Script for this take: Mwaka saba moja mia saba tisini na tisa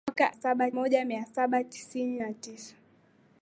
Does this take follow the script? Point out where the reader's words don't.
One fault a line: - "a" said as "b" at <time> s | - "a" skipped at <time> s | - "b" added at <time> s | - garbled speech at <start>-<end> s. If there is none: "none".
none